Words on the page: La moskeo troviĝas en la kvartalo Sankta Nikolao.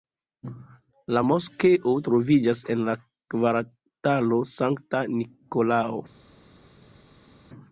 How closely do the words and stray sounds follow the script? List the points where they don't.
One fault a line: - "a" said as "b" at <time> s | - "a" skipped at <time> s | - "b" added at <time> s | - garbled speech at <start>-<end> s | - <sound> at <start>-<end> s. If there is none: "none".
none